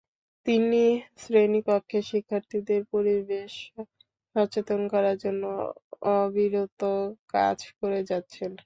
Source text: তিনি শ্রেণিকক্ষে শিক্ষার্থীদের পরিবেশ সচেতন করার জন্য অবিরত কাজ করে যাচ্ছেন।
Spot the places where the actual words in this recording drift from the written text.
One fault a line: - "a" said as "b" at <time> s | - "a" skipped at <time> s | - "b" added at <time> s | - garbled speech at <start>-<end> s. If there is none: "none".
none